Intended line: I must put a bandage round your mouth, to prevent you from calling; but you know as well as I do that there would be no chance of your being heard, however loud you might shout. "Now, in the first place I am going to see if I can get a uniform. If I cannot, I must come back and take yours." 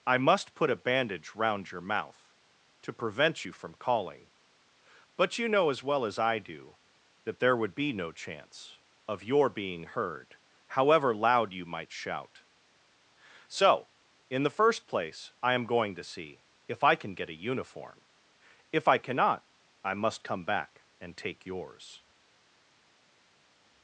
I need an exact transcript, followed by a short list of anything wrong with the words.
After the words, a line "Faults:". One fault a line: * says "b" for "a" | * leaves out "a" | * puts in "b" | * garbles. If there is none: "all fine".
I must put a bandage round your mouth, to prevent you from calling; but you know as well as I do that there would be no chance of your being heard, however loud you might shout. "So, in the first place I am going to see if I can get a uniform. If I cannot, I must come back and take yours."
Faults:
* says "So" for "Now"